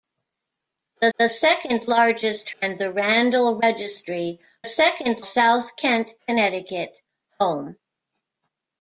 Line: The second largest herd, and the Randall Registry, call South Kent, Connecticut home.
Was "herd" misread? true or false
true